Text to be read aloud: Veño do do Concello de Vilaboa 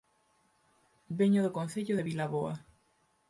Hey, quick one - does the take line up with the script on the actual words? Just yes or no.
no